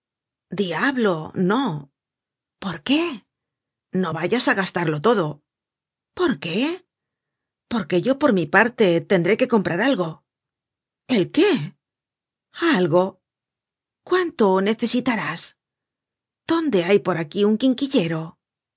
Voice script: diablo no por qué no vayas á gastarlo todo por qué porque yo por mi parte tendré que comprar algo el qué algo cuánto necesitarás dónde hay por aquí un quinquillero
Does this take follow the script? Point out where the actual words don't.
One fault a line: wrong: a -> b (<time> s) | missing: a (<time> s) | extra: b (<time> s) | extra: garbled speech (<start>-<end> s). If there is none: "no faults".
no faults